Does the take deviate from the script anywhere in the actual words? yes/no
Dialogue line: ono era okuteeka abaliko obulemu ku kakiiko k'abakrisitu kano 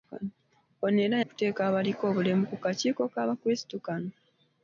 no